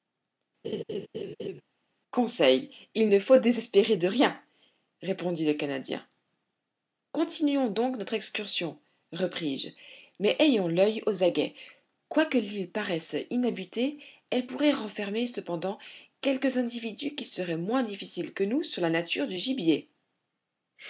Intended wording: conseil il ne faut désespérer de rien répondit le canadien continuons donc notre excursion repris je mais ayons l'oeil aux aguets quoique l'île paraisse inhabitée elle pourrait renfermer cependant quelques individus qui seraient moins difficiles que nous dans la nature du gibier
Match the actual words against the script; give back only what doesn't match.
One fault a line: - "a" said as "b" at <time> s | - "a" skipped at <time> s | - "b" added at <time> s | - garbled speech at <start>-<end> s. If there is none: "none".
- "dans" said as "sur" at 18.6 s